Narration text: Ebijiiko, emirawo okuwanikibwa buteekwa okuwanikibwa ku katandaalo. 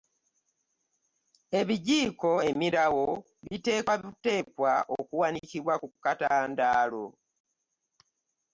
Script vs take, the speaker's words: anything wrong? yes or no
yes